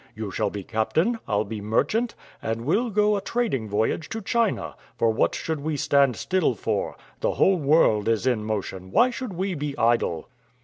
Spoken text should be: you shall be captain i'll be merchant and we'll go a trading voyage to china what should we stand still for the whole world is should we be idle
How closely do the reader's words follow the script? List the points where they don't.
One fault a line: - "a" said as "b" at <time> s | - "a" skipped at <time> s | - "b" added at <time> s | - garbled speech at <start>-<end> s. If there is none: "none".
- "for" added at 5.0 s
- "in motion why" added at 8.2 s